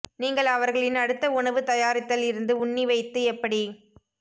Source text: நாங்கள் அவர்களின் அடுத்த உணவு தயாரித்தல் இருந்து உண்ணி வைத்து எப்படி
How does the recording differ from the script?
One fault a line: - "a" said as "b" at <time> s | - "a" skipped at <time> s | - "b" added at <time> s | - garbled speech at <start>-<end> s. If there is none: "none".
- "நாங்கள்" said as "நீங்கள்" at 0.2 s